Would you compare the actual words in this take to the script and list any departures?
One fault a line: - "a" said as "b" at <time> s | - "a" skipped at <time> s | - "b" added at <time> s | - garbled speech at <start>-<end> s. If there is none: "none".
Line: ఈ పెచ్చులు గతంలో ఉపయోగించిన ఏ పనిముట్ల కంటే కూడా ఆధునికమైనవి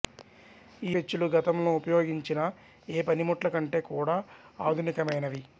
none